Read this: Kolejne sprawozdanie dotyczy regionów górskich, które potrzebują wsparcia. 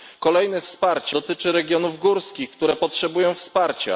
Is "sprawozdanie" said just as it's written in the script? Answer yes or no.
no